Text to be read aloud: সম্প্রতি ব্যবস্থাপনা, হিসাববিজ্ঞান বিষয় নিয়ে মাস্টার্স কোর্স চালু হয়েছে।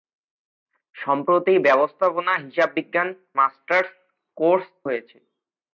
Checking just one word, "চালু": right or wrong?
wrong